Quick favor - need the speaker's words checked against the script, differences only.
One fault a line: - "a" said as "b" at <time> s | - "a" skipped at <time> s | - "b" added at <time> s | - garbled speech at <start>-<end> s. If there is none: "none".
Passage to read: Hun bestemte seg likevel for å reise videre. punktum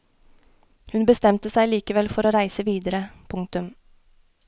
none